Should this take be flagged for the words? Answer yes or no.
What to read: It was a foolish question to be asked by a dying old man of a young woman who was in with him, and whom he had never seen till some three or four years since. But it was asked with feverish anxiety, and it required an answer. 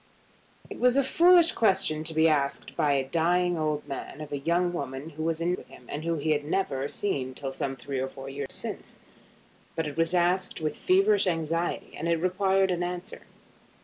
no